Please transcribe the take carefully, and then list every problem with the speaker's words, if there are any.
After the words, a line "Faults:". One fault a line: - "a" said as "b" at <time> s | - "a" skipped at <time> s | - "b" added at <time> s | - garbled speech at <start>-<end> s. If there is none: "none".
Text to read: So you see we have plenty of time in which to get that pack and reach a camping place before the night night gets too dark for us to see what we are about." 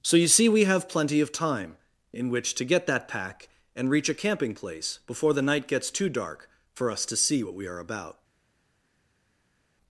So you see we have plenty of time in which to get that pack and reach a camping place before the night gets too dark for us to see what we are about."
Faults:
- "night" skipped at 5.7 s